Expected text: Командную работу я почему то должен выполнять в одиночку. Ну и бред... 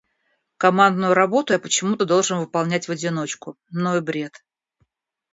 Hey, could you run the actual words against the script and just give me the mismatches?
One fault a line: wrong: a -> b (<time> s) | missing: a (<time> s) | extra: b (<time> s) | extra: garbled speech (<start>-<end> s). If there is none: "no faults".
no faults